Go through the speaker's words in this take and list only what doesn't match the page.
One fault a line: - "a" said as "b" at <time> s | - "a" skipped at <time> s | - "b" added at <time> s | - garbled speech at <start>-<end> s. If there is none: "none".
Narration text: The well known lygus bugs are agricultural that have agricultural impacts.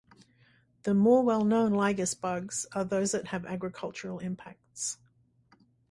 - "more" added at 0.9 s
- "agricultural" said as "those" at 2.8 s